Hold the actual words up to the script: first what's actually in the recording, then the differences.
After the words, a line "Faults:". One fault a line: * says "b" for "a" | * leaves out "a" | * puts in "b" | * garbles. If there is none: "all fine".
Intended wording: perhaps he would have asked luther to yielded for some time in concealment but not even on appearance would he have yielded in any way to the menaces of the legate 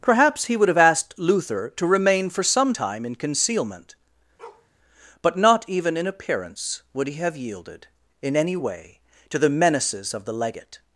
perhaps he would have asked luther to remain for some time in concealment but not even in appearance would he have yielded in any way to the menaces of the legate
Faults:
* says "remain" for "yielded"
* says "in" for "on"